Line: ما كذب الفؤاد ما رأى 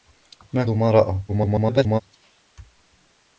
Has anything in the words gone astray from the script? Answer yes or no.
yes